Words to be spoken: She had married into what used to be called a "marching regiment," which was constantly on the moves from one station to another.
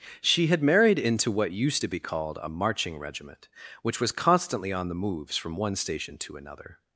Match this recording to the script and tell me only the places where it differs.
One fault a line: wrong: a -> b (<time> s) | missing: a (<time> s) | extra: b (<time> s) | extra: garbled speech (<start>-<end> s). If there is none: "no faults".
no faults